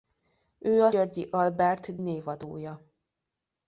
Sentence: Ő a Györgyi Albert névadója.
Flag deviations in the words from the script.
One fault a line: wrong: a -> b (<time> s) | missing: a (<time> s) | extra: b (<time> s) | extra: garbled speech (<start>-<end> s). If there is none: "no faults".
no faults